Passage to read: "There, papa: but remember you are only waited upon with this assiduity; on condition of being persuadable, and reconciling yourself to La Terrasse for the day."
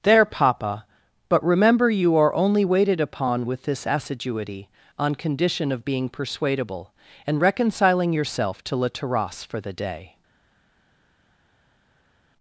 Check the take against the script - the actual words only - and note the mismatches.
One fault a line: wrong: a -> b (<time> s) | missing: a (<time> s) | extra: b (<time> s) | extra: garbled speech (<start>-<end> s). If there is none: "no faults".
no faults